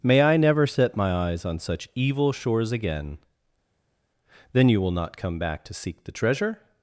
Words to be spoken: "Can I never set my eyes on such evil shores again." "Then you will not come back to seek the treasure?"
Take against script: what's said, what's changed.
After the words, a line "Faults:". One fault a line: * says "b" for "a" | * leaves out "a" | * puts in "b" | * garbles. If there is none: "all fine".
"May I never set my eyes on such evil shores again." "Then you will not come back to seek the treasure?"
Faults:
* says "May" for "Can"